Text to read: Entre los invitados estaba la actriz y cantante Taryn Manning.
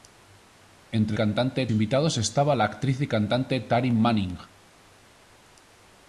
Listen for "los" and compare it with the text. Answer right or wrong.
wrong